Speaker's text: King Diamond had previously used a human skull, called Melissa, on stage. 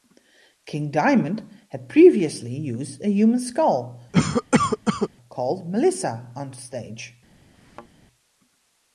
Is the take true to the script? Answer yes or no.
yes